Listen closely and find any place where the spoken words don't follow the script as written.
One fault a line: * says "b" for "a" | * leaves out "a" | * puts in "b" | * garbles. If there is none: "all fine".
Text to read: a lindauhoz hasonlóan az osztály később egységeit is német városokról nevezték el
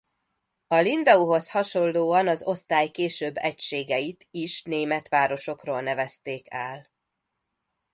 all fine